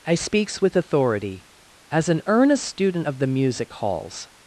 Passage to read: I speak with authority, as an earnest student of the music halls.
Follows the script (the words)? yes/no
no